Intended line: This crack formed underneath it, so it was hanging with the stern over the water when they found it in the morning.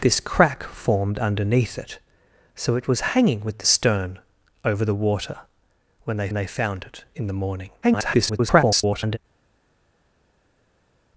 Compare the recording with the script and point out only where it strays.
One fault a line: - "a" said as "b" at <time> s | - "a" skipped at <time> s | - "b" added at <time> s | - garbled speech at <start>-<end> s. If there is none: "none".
- "they" added at 6.3 s
- garbled speech at 7.8-9.2 s